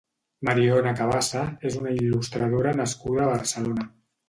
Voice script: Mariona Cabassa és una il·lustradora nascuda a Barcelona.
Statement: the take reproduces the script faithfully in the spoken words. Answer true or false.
true